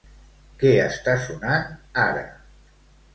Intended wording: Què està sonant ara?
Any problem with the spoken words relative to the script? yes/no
no